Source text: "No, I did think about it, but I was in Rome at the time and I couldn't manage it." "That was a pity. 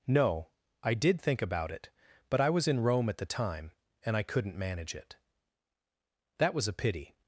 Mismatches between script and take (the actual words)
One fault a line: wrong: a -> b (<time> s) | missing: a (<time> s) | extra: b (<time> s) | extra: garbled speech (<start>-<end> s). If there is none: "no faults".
no faults